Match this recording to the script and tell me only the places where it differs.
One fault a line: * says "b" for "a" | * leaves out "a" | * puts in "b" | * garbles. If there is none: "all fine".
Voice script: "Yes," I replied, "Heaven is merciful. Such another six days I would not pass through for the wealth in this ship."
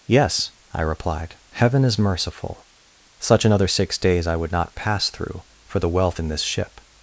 all fine